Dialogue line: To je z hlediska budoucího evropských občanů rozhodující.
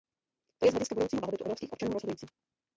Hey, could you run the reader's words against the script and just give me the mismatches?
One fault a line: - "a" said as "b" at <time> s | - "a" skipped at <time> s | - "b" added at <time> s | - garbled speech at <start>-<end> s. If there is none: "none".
- "blahobytu" added at 1.2 s